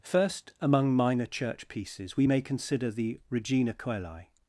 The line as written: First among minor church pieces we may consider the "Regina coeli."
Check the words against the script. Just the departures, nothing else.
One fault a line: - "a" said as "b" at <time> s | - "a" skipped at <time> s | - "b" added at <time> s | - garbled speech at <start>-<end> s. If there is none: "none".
none